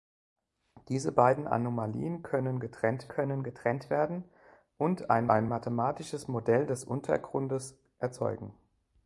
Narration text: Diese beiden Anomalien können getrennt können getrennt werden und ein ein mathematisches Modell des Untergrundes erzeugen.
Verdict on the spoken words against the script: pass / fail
pass